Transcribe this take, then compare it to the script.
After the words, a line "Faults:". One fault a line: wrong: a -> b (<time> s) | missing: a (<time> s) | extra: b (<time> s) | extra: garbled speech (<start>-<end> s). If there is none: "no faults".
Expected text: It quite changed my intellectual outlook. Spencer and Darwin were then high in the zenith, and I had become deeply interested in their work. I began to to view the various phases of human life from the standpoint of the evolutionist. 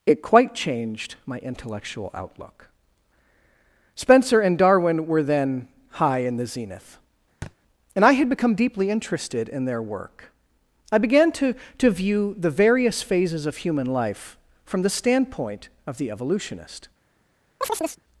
It quite changed my intellectual outlook. Spencer and Darwin were then high in the zenith, and I had become deeply interested in their work. I began to to view the various phases of human life from the standpoint of the evolutionist.
Faults:
no faults